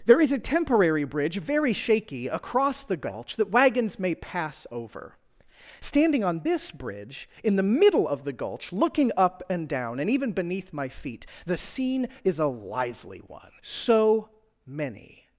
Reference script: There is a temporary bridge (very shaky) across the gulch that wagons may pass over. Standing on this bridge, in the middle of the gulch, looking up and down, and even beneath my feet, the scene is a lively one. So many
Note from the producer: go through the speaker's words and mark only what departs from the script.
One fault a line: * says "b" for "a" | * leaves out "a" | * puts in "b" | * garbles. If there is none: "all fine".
all fine